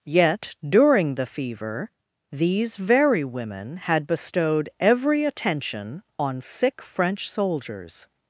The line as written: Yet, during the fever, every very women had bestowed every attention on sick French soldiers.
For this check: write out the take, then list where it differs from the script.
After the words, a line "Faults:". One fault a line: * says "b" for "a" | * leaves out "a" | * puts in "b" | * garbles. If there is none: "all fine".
Yet, during the fever, these very women had bestowed every attention on sick French soldiers.
Faults:
* says "these" for "every"